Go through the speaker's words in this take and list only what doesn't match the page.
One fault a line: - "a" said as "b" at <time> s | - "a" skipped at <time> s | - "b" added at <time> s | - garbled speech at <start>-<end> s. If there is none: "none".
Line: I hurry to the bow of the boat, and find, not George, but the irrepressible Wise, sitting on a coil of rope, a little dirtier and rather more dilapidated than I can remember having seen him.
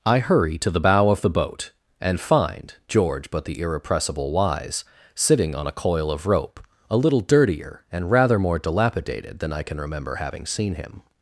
- "not" skipped at 2.7 s